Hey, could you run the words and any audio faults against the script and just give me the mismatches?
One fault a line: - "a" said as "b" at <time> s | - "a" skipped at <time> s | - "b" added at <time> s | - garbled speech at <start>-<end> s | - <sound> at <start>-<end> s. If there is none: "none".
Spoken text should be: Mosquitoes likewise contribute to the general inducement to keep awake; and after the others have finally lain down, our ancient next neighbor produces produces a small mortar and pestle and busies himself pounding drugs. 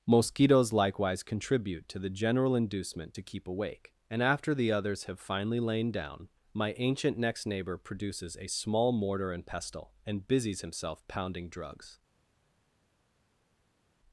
- "our" said as "my" at 6.5 s
- "produces" skipped at 8.4 s